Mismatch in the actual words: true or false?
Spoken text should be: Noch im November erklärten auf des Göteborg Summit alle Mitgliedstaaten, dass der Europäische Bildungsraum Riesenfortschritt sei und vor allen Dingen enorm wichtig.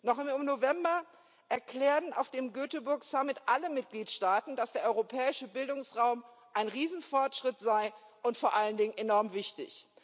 true